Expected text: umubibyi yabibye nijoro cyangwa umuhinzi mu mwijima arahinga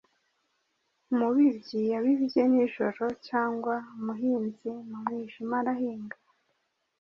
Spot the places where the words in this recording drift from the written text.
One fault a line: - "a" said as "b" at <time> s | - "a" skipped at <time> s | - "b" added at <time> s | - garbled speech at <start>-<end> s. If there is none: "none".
none